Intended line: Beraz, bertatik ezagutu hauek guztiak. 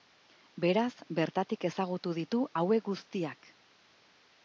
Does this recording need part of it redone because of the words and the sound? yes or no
yes